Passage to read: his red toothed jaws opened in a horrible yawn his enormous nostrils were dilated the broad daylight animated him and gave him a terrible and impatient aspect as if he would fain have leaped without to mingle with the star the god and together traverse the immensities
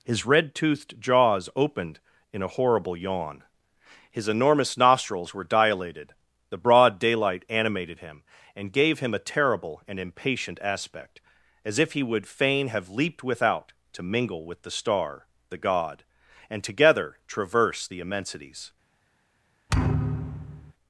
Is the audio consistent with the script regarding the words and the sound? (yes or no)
no